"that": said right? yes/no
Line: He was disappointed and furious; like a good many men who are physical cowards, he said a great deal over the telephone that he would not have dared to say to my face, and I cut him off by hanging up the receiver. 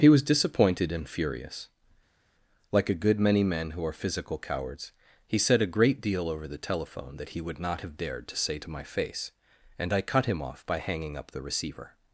yes